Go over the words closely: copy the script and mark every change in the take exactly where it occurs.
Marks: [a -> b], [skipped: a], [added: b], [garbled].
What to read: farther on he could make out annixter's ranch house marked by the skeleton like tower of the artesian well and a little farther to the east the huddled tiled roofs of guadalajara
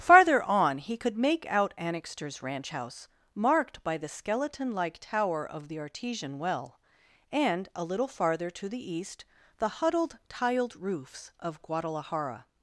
farther on he could make out annixter's ranch house marked by the skeleton like tower of the artesian well and a little farther to the east the huddled tiled roofs of guadalajara